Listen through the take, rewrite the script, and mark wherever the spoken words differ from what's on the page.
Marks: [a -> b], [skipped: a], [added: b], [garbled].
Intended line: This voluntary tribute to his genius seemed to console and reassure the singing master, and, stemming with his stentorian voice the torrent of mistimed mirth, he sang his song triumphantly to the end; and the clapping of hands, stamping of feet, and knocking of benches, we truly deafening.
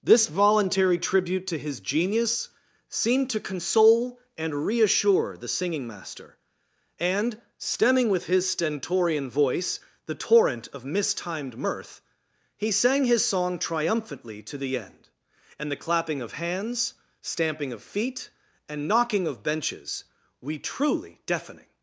This voluntary tribute to his genius seemed to console and reassure the singing master, and, stemming with his stentorian voice the torrent of mistimed mirth, he sang his song triumphantly to the end; and the clapping of hands, stamping of feet, and knocking of benches, we truly deafening.